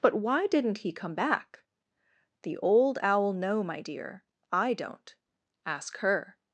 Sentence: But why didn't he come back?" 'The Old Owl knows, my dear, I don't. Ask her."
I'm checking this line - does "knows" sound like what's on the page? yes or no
no